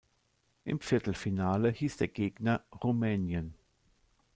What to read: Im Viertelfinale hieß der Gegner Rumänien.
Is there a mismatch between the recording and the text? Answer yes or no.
no